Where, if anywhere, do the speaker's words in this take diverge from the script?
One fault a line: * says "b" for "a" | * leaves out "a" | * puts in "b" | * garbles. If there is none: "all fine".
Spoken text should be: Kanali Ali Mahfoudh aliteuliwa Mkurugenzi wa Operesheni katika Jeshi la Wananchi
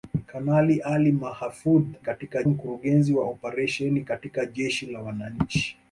* says "katika" for "aliteuliwa"